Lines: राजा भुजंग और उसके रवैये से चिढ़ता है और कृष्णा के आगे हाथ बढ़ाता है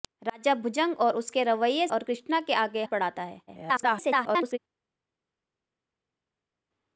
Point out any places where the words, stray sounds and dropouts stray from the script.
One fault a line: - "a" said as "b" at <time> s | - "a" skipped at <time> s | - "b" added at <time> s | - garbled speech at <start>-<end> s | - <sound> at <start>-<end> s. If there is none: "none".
- "से चिढ़ता है" skipped at 1.9 s
- "हाथ" skipped at 2.8 s
- garbled speech at 3.5-4.6 s